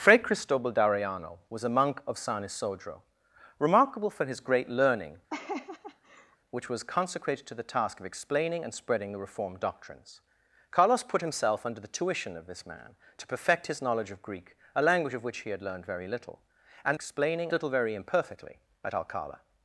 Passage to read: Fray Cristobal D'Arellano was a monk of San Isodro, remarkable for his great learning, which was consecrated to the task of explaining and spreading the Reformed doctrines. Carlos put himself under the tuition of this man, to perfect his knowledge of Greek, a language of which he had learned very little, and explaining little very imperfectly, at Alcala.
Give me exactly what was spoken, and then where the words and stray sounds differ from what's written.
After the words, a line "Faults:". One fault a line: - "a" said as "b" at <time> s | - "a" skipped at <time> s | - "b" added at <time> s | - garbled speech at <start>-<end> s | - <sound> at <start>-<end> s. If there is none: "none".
Fray Cristobal D'Arellano was a monk of San Isodro, remarkable for his great learning, which was consecrated to the task of explaining and spreading the Reformed doctrines. Carlos put himself under the tuition of this man, to perfect his knowledge of Greek, a language of which he had learned very little, and explaining little very imperfectly, at Alcala.
Faults:
- laugh at 5.3-6.4 s